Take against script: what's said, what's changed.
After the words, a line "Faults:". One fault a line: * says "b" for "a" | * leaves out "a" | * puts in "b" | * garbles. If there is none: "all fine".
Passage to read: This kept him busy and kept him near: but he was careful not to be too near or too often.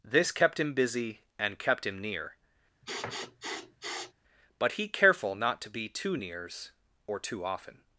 This kept him busy and kept him near: but he careful not to be too nears or too often.
Faults:
* leaves out "was"
* says "nears" for "near"